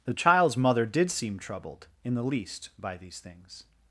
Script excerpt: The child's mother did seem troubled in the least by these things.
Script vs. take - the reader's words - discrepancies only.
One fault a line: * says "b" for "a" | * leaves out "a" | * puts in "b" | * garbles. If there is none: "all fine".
all fine